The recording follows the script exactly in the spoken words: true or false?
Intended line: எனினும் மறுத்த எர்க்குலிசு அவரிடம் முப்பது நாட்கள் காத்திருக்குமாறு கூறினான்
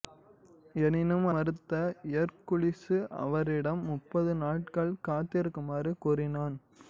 true